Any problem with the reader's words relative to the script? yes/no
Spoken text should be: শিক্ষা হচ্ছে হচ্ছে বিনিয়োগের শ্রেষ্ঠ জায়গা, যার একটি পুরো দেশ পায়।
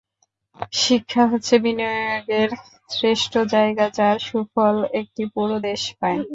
yes